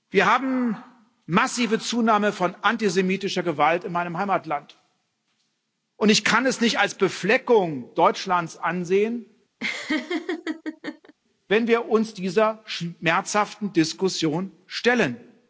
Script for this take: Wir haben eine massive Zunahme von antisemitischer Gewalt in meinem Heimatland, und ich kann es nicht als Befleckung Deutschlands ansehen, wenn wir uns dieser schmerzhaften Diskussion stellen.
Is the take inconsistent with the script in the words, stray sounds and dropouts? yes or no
yes